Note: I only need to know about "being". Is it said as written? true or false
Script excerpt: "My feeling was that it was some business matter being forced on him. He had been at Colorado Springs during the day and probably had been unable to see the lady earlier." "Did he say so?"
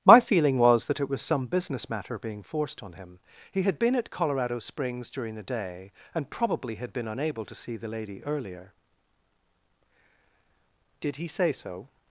true